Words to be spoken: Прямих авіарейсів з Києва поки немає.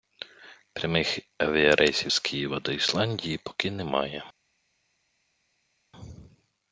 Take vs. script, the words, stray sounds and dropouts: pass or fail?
fail